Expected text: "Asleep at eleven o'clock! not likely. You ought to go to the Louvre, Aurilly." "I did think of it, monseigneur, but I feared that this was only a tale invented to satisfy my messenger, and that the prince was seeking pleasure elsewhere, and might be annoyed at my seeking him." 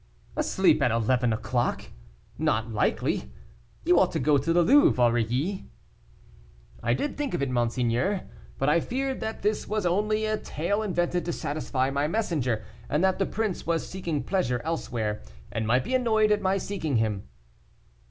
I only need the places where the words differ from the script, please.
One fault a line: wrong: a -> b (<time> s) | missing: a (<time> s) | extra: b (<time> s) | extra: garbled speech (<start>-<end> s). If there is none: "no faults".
no faults